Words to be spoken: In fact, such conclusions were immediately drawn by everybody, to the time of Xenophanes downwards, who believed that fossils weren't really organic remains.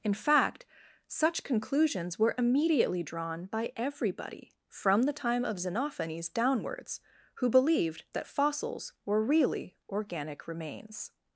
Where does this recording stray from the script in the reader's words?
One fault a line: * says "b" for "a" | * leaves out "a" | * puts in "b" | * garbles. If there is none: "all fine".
* says "from" for "to"
* says "were" for "weren't"